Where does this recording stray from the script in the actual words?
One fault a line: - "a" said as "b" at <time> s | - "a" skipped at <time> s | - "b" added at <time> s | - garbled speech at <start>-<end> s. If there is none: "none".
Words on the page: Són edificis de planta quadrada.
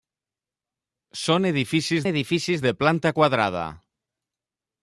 - "edificis" added at 2.1 s